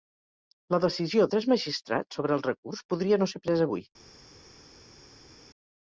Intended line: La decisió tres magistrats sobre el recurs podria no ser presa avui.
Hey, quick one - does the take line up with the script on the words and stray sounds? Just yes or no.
yes